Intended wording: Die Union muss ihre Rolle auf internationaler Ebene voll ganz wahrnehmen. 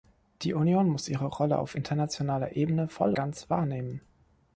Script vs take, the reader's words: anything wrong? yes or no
no